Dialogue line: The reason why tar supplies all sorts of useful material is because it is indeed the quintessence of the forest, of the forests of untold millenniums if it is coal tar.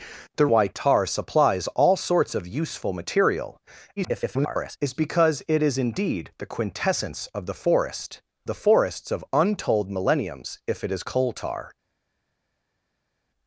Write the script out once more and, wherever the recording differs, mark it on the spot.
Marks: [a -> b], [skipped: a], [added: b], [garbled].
The [skipped: reason] why tar supplies all sorts of useful material [garbled] is because it is indeed the quintessence of the forest, [skipped: of] the forests of untold millenniums if it is coal tar.